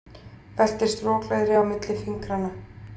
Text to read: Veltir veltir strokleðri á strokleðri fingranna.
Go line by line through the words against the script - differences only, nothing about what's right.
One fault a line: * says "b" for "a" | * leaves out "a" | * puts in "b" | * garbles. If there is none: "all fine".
* leaves out "veltir"
* says "milli" for "strokleðri"